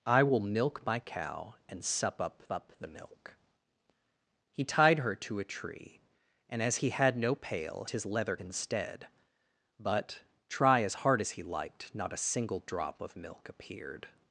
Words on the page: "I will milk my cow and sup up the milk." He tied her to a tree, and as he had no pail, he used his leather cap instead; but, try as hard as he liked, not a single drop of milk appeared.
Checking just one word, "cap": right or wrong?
wrong